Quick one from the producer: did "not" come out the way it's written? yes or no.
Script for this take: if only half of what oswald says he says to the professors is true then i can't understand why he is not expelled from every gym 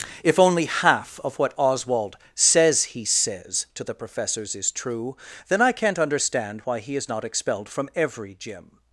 yes